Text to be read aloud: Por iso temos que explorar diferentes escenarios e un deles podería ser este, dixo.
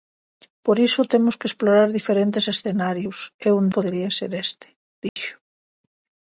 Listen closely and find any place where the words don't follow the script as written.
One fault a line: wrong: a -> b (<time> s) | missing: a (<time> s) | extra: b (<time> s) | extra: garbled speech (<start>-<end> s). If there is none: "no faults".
missing: deles (3.6 s)